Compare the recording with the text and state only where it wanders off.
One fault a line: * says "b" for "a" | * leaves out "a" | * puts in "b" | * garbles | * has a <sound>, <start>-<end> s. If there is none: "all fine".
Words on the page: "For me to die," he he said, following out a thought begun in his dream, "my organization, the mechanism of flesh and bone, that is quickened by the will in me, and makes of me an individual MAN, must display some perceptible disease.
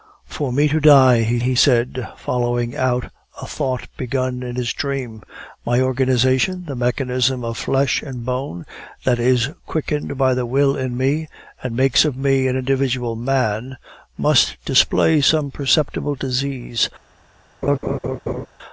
* has a laugh, 17.6-18.5 s